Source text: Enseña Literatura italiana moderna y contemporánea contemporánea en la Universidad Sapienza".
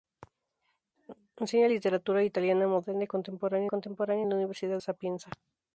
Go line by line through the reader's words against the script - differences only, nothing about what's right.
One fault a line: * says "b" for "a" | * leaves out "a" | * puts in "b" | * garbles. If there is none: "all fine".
all fine